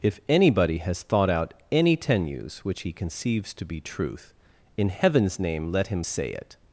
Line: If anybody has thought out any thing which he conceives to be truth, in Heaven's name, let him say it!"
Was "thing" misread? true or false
true